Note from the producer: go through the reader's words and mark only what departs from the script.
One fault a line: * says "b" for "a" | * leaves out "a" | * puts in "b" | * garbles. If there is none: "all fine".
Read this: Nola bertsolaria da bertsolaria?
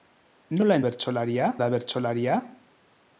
all fine